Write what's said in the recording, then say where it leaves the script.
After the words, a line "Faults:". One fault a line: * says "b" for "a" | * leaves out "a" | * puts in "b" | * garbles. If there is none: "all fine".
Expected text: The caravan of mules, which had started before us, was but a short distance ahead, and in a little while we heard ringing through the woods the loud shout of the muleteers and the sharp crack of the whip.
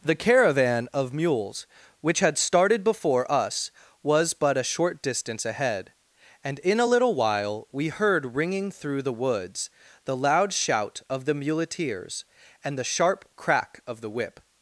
The caravan of mules, which had started before us, was but a short distance ahead, and in a little while we heard ringing through the woods the loud shout of the muleteers and the sharp crack of the whip.
Faults:
all fine